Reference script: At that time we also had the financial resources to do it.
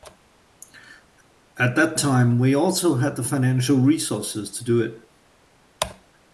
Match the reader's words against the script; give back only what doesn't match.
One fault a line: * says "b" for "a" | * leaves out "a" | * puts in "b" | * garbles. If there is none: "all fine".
all fine